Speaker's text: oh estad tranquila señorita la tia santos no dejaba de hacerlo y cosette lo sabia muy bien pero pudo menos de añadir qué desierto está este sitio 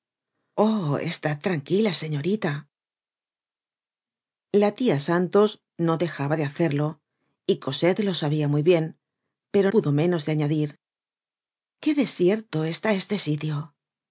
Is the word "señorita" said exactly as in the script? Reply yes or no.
yes